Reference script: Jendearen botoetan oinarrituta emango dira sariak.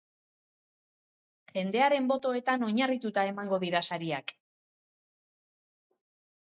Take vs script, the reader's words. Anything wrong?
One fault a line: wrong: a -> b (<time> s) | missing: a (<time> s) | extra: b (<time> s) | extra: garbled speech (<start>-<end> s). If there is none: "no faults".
no faults